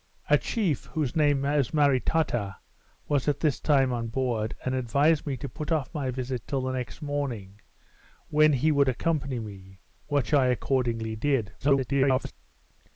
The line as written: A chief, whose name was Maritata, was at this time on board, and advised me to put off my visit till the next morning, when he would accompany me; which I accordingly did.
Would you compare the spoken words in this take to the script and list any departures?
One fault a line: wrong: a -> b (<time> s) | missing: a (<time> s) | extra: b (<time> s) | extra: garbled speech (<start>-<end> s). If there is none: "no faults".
extra: garbled speech (11.6-12.3 s)